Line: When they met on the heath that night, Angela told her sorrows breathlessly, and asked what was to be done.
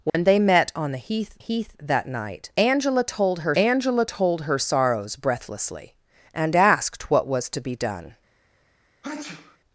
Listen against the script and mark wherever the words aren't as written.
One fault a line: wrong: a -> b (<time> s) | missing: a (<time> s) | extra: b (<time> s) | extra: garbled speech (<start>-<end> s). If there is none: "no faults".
extra: heath (1.4 s)
extra: Angela told her (3.5 s)